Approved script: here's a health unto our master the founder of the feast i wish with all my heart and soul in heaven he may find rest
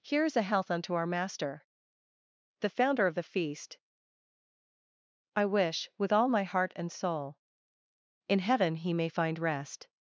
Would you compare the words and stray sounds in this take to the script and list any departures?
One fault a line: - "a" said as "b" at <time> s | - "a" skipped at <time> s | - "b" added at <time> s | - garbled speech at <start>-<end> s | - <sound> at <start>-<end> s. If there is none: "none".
none